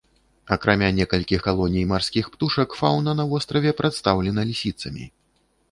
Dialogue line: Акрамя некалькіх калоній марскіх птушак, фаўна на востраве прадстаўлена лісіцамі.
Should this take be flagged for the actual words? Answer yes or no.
no